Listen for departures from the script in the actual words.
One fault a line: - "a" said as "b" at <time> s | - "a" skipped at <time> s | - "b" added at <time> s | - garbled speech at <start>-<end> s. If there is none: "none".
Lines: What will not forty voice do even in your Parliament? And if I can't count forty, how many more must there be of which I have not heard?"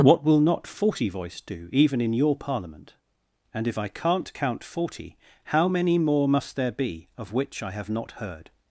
none